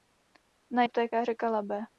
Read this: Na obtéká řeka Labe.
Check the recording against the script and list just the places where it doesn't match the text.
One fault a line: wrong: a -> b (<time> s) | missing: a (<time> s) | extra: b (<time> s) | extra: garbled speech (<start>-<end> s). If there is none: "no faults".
no faults